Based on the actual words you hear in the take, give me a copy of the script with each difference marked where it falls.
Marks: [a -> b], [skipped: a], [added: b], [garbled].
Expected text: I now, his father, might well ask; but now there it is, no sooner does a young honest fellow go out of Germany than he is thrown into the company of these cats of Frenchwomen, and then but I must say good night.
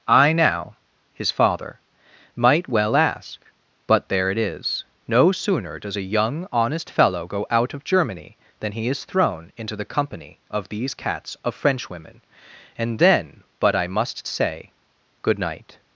I now, his father, might well ask; but [skipped: now] there it is, no sooner does a young honest fellow go out of Germany than he is thrown into the company of these cats of Frenchwomen, and then but I must say good night.